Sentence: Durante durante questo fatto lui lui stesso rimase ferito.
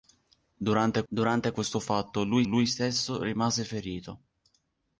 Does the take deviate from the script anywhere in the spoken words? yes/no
no